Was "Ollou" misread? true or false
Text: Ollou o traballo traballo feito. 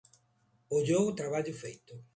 false